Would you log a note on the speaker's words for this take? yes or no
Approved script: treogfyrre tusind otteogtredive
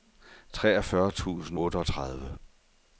no